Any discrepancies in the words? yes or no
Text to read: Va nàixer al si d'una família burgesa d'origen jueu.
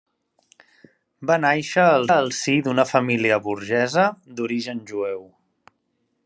yes